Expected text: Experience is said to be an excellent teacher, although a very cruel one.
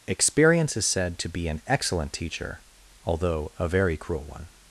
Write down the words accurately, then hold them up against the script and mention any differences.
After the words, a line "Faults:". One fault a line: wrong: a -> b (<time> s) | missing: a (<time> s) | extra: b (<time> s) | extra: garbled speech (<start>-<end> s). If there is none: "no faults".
Experience is said to be an excellent teacher, although a very cruel one.
Faults:
no faults